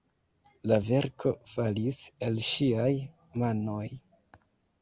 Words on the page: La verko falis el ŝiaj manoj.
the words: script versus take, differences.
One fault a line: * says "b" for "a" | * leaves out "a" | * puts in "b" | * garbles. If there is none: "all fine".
all fine